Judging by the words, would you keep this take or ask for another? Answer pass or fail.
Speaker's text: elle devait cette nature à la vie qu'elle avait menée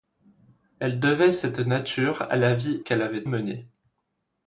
pass